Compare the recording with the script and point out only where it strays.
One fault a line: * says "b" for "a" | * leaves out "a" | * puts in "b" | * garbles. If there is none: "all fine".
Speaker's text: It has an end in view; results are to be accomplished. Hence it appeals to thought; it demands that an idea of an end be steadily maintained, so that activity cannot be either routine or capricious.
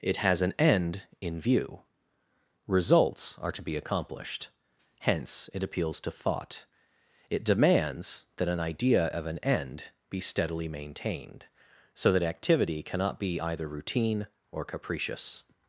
all fine